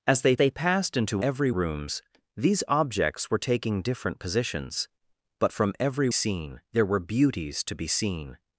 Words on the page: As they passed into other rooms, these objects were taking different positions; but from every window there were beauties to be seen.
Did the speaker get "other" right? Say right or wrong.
wrong